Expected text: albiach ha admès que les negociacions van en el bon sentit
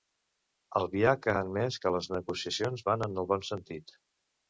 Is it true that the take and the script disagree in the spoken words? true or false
false